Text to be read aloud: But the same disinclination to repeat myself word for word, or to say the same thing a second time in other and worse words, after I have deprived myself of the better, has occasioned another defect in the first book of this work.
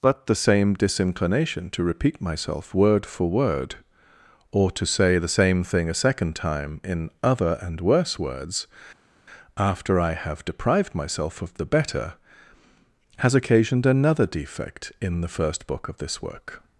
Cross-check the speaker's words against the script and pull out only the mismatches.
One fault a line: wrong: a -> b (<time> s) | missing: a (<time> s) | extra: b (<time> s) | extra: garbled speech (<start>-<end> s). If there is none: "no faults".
no faults